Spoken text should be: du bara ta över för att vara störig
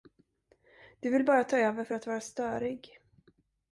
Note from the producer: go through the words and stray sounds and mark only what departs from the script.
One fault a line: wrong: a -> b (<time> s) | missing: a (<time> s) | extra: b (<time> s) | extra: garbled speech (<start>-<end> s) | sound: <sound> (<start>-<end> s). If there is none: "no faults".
extra: vill (1.1 s)